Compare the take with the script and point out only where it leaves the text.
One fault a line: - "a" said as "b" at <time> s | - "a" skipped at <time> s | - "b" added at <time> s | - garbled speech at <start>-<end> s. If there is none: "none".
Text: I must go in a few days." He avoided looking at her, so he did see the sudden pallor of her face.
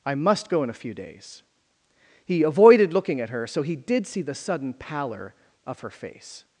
none